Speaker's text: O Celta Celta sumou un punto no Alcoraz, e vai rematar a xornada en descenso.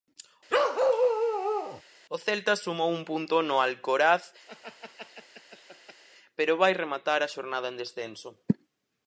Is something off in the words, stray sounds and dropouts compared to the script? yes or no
yes